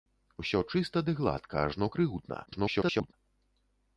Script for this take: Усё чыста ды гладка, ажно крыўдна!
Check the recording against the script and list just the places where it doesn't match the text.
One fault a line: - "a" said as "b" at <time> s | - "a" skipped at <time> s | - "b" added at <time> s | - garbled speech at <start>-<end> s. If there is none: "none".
- garbled speech at 2.5-3.1 s